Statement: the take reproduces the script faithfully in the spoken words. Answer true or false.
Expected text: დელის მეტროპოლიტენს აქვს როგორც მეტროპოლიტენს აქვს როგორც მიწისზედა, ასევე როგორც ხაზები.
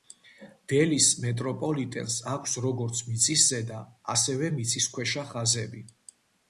false